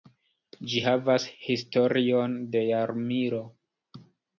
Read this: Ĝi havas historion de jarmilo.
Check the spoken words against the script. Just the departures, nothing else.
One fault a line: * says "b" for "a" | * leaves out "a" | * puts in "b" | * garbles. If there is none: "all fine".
all fine